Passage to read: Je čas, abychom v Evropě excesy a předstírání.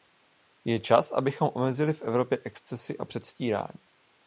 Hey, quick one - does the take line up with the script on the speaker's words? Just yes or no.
no